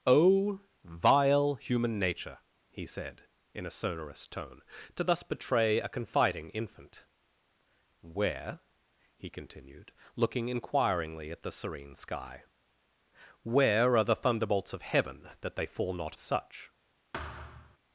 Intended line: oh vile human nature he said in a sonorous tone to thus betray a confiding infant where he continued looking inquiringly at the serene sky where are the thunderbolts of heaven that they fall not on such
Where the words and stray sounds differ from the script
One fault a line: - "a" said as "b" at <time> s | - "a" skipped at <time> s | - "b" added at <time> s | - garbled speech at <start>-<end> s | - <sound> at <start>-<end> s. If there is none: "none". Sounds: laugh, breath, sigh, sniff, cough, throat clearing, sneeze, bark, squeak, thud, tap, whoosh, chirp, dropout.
- "on" skipped at 16.2 s
- thud at 17.1-17.8 s